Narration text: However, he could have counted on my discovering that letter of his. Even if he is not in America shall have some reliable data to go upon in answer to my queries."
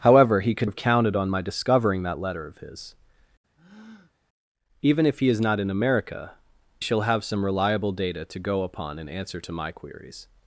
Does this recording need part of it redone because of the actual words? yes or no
no